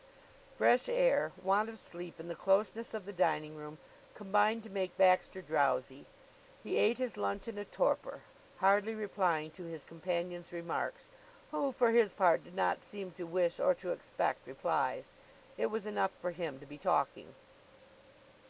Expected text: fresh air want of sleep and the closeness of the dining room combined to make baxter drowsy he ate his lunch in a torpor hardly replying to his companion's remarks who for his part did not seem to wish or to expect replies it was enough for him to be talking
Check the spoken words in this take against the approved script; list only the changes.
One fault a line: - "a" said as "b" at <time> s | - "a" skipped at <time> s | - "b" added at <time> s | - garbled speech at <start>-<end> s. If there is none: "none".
none